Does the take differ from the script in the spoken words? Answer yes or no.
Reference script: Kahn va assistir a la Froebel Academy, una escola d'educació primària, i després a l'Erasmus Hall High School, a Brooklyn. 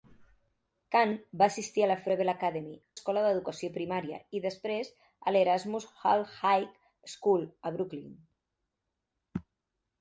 yes